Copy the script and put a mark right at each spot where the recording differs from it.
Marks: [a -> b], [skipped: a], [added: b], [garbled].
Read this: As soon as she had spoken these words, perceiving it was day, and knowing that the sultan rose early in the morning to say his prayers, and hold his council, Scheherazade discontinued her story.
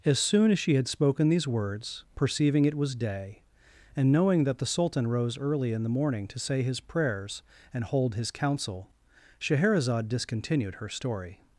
As soon as she had spoken these words, perceiving it was day, and knowing that the sultan rose early in the morning to say his prayers, and hold his council, Scheherazade discontinued her story.